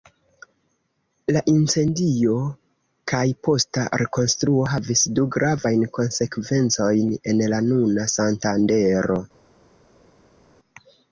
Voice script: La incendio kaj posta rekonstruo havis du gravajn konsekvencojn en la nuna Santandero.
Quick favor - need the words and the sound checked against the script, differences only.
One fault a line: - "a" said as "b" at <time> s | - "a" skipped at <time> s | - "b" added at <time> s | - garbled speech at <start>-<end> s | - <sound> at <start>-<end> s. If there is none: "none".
none